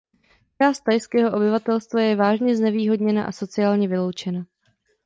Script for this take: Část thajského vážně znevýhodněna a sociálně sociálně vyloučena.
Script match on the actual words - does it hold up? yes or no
no